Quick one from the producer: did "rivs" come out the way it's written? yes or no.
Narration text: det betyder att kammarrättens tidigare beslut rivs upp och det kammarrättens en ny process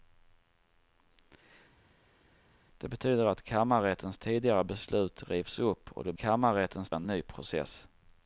yes